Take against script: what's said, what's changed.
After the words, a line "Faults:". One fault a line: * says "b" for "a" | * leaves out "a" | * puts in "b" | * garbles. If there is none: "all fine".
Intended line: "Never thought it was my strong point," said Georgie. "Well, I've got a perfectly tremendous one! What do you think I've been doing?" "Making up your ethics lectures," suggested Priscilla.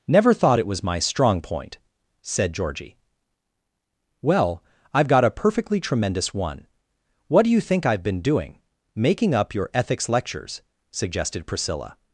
"Never thought it was my strong point," said Georgie. "Well, I've got a perfectly tremendous one! What do you think I've been doing?" "Making up your ethics lectures," suggested Priscilla.
Faults:
all fine